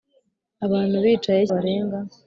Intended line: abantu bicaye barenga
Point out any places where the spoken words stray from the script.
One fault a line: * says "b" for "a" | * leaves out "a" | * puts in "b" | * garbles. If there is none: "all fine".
all fine